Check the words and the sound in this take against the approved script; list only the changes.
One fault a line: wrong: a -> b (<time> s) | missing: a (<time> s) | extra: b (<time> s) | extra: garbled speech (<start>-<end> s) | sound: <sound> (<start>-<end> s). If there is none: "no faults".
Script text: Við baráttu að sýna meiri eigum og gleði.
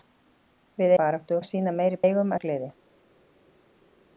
no faults